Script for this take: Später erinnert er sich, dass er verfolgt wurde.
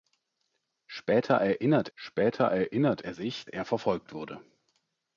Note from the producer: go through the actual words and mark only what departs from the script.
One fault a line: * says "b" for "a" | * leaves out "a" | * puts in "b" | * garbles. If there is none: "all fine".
* puts in "später erinnert"
* leaves out "dass"